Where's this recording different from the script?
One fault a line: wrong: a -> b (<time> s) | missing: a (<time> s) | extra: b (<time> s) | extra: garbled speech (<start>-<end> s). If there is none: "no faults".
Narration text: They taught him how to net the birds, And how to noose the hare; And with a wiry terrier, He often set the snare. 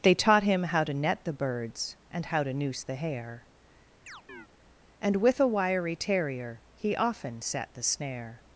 no faults